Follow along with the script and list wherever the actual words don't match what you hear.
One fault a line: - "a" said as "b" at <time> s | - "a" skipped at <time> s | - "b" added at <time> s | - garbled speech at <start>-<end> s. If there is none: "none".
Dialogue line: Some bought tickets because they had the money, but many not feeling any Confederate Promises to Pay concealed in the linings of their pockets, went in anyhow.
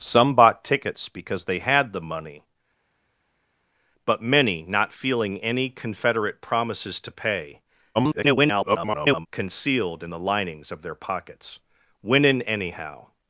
- garbled speech at 7.9-9.3 s